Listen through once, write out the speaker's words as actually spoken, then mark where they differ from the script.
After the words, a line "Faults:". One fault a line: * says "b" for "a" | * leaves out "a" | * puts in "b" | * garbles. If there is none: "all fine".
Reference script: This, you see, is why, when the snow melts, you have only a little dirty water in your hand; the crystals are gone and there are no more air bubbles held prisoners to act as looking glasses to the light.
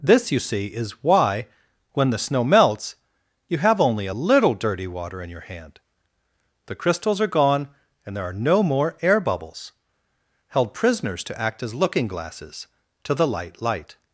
This, you see, is why, when the snow melts, you have only a little dirty water in your hand; the crystals are gone and there are no more air bubbles held prisoners to act as looking glasses to the light light.
Faults:
* puts in "light"